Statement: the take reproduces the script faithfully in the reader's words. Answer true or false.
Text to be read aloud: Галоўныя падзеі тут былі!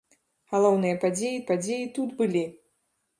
false